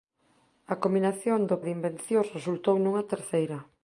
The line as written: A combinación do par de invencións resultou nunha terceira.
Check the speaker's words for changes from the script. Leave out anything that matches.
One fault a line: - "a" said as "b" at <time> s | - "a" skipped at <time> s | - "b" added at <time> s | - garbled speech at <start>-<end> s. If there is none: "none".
- "par" skipped at 1.6 s